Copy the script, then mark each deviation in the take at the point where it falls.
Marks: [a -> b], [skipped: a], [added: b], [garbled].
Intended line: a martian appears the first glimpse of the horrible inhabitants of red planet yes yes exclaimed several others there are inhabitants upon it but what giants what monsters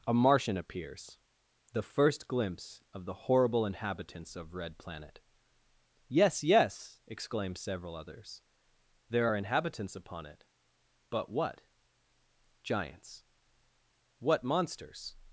a martian appears the first glimpse of the horrible inhabitants of red planet yes yes exclaimed several others there are inhabitants upon it but what giants what monsters